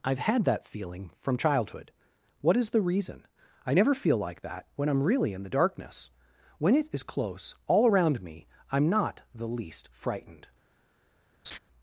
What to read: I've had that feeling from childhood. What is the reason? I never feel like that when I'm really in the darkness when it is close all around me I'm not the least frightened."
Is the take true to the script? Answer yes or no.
yes